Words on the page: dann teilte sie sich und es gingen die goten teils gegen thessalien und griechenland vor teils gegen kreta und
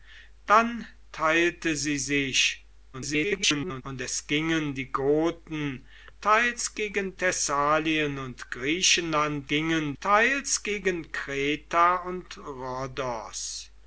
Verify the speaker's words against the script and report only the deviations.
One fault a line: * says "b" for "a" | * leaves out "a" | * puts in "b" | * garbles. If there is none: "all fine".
* garbles
* says "gingen" for "vor"